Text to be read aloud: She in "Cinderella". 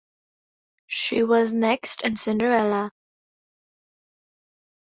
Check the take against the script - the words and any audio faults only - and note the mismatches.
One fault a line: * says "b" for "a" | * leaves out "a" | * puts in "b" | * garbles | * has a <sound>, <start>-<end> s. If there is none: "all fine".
* puts in "was next"